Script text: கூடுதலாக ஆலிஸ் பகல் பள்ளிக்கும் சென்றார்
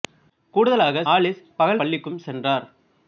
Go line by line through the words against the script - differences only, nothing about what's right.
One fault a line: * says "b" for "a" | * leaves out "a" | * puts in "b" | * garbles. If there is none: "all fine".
all fine